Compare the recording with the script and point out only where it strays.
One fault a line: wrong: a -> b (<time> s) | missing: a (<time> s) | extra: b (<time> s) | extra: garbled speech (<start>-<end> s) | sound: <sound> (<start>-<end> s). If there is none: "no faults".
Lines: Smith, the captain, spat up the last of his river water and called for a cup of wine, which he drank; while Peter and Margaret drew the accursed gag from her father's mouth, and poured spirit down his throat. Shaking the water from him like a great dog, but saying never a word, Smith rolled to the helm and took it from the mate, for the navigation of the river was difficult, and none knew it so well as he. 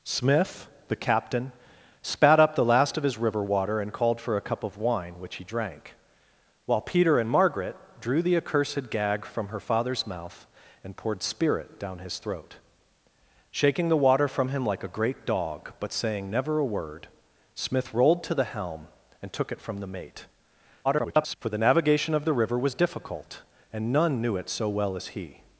extra: garbled speech (20.8-21.4 s)